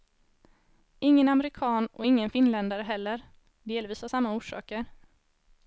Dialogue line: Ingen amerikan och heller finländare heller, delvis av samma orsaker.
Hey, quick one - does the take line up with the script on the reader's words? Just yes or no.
no